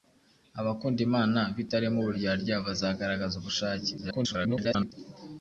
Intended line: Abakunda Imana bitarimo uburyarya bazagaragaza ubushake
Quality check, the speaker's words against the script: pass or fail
fail